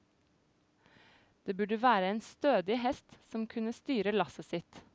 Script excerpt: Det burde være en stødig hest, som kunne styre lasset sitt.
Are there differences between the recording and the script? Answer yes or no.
no